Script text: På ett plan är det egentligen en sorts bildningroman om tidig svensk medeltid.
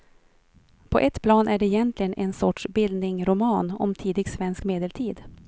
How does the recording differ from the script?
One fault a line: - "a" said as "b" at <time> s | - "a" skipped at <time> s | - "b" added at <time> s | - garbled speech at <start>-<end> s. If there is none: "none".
none